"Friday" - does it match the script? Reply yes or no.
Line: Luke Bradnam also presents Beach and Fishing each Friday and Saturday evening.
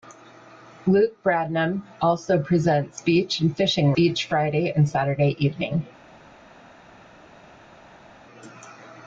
yes